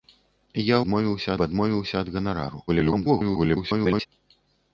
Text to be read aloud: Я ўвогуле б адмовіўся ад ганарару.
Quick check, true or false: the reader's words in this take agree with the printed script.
false